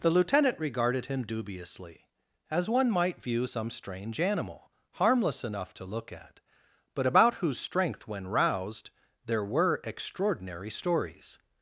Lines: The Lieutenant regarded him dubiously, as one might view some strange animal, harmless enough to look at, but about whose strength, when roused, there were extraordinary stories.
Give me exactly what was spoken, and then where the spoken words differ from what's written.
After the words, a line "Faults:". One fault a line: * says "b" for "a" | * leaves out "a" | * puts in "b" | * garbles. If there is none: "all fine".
The Lieutenant regarded him dubiously, as one might view some strange animal, harmless enough to look at, but about whose strength, when roused, there were extraordinary stories.
Faults:
all fine